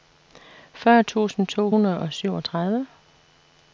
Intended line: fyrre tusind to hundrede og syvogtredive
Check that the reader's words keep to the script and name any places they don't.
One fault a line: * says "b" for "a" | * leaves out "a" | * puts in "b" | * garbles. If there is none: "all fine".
all fine